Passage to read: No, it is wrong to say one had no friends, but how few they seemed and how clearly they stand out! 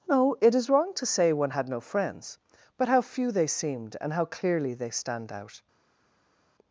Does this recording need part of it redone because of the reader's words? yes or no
no